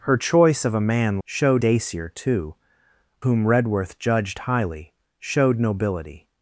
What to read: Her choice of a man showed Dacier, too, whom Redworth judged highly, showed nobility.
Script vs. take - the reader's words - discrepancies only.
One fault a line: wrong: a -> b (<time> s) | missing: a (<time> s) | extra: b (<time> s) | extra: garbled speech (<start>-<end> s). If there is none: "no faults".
no faults